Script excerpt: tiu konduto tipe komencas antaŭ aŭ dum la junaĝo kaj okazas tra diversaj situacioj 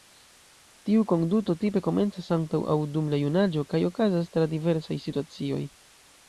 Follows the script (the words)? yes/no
yes